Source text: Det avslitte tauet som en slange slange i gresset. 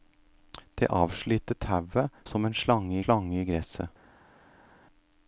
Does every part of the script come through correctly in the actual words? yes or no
yes